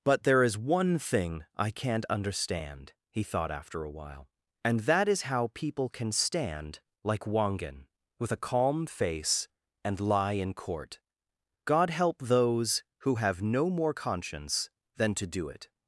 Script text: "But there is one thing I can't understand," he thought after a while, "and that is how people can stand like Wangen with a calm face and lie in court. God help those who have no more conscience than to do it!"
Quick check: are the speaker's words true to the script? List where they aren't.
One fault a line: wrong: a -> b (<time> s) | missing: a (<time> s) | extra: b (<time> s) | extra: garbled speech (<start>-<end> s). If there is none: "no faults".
no faults